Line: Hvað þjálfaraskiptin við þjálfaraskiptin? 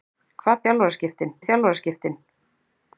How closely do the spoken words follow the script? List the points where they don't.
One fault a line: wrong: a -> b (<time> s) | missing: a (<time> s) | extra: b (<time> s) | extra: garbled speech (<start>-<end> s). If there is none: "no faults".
no faults